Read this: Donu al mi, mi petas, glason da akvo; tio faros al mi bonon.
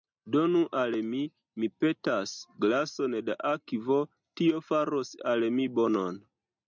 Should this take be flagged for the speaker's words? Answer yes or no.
no